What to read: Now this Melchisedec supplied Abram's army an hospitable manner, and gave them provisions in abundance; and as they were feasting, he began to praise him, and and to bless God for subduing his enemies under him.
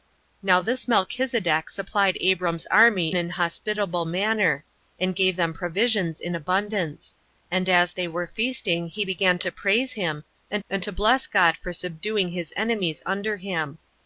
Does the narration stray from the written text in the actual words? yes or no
no